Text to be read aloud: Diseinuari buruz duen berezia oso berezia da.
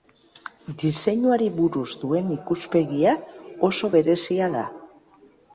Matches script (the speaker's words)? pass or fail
fail